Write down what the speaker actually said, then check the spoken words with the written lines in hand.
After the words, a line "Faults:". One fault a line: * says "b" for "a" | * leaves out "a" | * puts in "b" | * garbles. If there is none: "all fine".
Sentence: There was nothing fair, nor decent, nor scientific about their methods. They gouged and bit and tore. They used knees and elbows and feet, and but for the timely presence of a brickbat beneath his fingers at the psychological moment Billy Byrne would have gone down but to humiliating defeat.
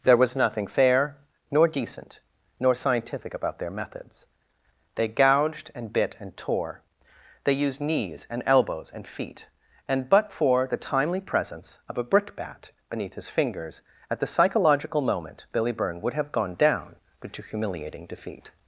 There was nothing fair, nor decent, nor scientific about their methods. They gouged and bit and tore. They used knees and elbows and feet, and but for the timely presence of a brickbat beneath his fingers at the psychological moment Billy Byrne would have gone down but to humiliating defeat.
Faults:
all fine